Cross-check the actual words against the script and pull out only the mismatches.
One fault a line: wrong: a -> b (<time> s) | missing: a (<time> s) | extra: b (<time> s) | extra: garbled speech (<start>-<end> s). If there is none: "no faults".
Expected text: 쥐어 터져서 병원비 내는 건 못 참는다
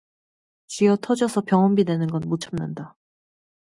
no faults